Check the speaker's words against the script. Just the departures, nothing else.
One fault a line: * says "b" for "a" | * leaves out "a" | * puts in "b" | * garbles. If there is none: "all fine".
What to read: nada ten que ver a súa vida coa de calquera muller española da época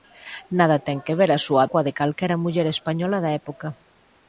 * leaves out "vida"